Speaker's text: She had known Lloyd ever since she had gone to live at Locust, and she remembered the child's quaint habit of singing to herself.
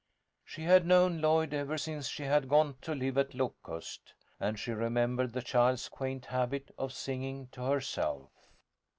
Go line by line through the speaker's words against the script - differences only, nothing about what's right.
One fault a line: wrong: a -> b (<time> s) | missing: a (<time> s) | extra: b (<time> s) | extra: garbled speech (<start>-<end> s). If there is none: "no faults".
no faults